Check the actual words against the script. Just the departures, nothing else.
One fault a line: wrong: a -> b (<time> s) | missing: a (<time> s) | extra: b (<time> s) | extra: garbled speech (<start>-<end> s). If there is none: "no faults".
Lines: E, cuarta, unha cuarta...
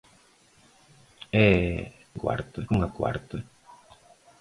no faults